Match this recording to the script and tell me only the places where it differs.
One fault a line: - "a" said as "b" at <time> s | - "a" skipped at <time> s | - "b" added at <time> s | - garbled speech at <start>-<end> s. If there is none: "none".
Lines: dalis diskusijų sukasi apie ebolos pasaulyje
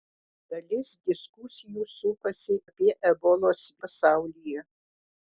none